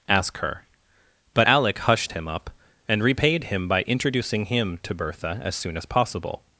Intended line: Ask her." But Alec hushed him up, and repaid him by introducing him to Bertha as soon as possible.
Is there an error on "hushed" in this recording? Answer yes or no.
no